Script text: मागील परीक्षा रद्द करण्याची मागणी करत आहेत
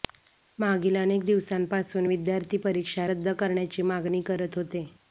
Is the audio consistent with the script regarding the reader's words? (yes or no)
no